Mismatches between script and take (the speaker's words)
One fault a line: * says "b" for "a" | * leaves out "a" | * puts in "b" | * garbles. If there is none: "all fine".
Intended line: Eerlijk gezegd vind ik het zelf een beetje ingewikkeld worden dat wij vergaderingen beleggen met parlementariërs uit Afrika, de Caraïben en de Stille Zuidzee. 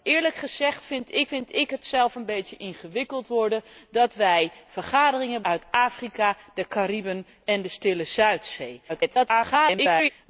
* puts in "vind ik"
* leaves out "beleggen met parlementariërs"
* garbles